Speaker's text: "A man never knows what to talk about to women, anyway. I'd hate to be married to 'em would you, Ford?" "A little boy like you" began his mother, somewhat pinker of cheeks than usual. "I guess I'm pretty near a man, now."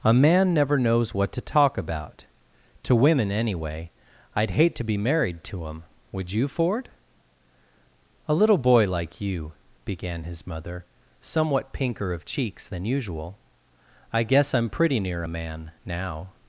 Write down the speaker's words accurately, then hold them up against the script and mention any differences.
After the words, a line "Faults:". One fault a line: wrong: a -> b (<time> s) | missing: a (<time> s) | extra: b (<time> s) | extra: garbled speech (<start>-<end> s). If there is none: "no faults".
"A man never knows what to talk about to women, anyway. I'd hate to be married to 'em would you, Ford?" "A little boy like you" began his mother, somewhat pinker of cheeks than usual. "I guess I'm pretty near a man, now."
Faults:
no faults